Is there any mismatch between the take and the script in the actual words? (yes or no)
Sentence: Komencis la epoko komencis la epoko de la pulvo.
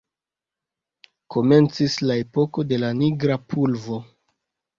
yes